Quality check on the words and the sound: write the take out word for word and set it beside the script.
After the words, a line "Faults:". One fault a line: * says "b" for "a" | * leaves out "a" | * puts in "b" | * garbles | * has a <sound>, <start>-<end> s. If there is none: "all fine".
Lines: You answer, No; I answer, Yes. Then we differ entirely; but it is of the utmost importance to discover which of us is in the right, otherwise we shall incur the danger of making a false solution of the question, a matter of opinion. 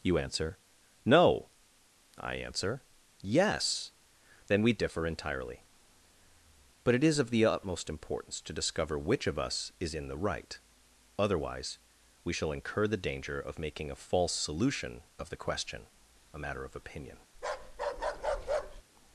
You answer, No; I answer, Yes. Then we differ entirely; but it is of the utmost importance to discover which of us is in the right, otherwise we shall incur the danger of making a false solution of the question, a matter of opinion.
Faults:
* has a bark, 17.3-18.8 s